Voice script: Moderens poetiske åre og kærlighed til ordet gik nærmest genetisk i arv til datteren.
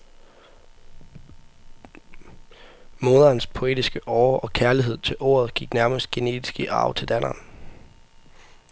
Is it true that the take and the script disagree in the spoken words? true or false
false